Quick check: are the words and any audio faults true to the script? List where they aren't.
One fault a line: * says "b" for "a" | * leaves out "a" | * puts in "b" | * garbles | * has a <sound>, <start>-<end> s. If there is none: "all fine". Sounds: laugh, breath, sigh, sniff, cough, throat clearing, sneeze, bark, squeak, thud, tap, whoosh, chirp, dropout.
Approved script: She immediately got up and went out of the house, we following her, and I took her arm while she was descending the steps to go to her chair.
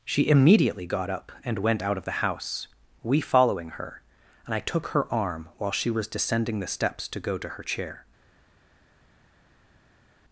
all fine